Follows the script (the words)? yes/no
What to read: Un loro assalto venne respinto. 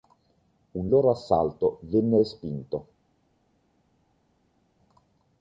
yes